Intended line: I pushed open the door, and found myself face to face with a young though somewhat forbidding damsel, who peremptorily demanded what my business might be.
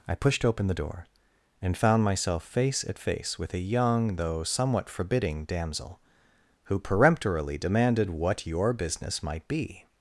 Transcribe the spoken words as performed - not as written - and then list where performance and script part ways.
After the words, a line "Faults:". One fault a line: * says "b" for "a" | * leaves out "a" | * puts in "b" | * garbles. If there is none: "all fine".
I pushed open the door, and found myself face at face with a young though somewhat forbidding damsel, who peremptorily demanded what your business might be.
Faults:
* says "at" for "to"
* says "your" for "my"